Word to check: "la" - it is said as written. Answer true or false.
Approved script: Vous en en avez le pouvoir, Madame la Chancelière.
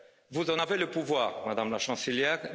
true